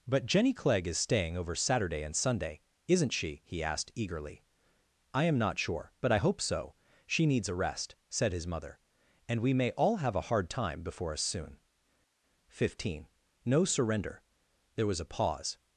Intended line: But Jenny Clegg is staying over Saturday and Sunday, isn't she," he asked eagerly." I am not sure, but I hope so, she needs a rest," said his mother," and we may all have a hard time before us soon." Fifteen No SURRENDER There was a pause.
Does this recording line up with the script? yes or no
yes